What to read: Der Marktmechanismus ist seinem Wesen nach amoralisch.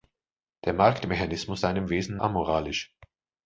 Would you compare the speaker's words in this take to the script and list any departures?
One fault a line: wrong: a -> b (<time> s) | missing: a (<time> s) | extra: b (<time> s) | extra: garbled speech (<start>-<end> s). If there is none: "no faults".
missing: ist (1.6 s)
missing: nach (2.2 s)